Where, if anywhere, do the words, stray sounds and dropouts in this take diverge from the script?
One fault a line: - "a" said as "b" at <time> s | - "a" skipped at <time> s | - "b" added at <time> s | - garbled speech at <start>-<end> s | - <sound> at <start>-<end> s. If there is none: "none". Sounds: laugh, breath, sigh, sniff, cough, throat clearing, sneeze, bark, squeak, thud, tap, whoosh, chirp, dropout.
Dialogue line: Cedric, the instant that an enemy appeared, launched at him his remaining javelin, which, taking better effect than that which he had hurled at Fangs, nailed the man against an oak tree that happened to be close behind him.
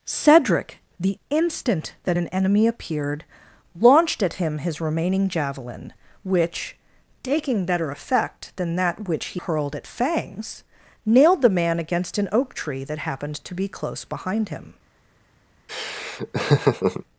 - "had" skipped at 9.4 s
- laugh at 15.7-17.0 s